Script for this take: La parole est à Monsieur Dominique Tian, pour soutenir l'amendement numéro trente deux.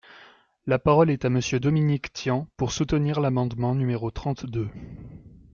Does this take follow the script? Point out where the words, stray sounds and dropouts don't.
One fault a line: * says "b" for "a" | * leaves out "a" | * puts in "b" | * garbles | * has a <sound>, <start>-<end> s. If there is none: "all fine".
all fine